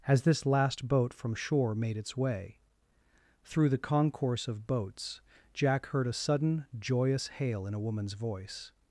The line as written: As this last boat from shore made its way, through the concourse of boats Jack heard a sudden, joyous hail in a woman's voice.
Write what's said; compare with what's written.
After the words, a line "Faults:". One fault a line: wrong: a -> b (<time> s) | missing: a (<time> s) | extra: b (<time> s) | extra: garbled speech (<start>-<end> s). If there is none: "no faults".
As this last boat from shore made its way, through the concourse of boats Jack heard a sudden, joyous hail in a woman's voice.
Faults:
no faults